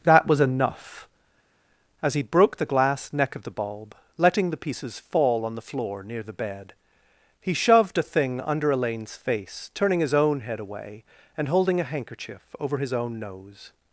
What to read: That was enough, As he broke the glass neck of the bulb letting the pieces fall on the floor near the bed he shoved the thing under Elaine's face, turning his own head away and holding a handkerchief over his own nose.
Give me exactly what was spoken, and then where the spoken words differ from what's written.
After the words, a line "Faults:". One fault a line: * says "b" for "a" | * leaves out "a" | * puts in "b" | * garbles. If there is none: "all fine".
That was enough, As he broke the glass neck of the bulb letting the pieces fall on the floor near the bed he shoved a thing under Elaine's face, turning his own head away and holding a handkerchief over his own nose.
Faults:
* says "a" for "the"